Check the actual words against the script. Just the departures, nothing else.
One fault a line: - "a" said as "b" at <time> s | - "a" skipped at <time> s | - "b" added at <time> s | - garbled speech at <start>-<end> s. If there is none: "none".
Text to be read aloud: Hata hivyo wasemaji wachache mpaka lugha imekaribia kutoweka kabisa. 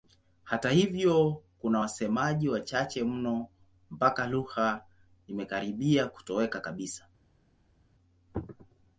- "kuna" added at 1.6 s
- "mno" added at 3.0 s